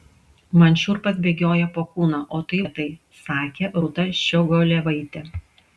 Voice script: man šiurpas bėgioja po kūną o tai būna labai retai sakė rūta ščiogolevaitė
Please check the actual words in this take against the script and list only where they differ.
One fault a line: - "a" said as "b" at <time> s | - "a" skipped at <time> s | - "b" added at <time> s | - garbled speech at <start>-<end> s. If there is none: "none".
- "būna labai" skipped at 2.6 s